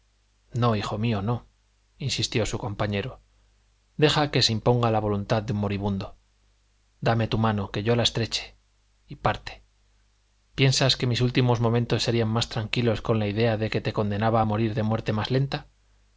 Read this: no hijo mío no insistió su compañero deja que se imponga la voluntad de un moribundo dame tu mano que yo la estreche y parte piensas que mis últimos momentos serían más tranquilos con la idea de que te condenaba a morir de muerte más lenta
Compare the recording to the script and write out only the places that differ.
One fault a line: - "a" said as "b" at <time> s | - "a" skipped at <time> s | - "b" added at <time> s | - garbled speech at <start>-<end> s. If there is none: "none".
none